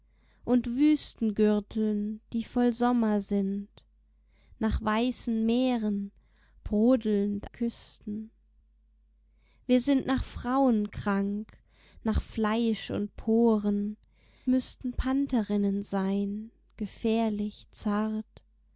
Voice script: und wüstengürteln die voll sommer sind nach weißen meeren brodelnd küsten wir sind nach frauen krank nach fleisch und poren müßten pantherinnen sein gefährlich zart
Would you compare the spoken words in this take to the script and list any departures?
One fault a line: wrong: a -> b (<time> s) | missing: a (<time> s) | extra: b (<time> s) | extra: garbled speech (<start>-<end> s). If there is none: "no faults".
no faults